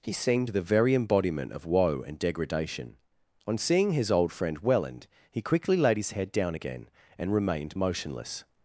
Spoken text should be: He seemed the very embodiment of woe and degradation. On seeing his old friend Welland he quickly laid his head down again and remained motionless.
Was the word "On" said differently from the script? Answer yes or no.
no